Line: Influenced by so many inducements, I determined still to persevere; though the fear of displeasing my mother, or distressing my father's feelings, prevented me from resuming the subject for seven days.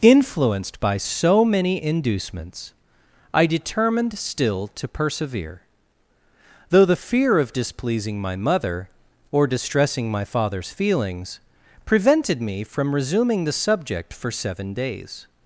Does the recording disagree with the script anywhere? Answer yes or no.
no